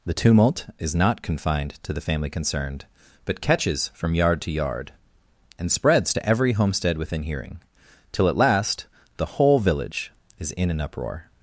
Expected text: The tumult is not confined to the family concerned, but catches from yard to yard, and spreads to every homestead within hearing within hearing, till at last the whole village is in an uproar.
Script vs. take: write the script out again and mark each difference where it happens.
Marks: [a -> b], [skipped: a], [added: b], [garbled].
The tumult is not confined to the family concerned, but catches from yard to yard, and spreads to every homestead within hearing [skipped: within hearing,] till at last the whole village is in an uproar.